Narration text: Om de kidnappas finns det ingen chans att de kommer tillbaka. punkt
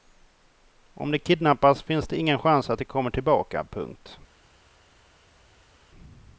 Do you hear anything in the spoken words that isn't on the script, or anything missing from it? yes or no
no